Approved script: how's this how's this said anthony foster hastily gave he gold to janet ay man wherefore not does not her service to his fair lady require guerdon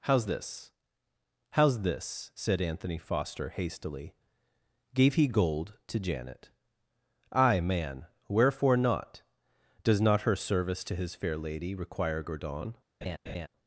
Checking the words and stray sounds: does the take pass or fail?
fail